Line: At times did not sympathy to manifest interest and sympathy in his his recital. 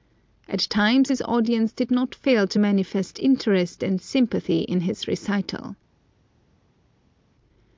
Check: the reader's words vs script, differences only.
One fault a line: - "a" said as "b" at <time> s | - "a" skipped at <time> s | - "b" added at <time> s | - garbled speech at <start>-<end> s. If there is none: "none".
- "his audience" added at 1.1 s
- "sympathy" said as "fail" at 2.1 s
- "his" skipped at 5.1 s